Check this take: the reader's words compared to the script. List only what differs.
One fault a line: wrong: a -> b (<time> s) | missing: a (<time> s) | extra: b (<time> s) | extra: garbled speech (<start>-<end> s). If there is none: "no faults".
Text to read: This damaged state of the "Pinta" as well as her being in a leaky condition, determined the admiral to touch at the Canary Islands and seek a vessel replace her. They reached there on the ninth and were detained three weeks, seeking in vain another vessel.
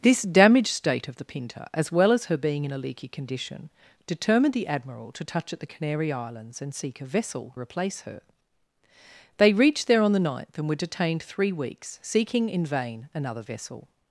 no faults